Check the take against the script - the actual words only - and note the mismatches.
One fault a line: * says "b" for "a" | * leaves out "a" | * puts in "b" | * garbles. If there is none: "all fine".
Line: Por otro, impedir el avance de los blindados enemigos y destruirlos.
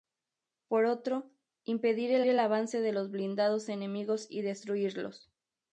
* puts in "el"